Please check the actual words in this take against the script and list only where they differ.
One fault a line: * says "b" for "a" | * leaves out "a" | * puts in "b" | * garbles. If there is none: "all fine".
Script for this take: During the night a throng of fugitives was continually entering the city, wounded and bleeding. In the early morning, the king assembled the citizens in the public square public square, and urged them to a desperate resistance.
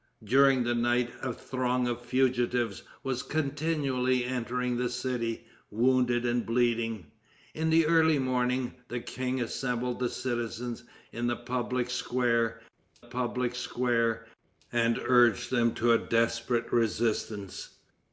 all fine